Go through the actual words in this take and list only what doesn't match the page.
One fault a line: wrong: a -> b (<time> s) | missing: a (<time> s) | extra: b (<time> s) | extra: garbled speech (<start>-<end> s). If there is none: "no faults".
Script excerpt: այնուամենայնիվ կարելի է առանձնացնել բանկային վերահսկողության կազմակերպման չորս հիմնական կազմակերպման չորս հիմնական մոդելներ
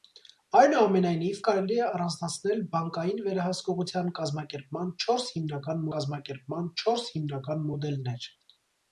no faults